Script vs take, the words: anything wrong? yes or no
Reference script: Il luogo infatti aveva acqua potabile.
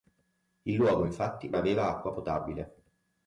no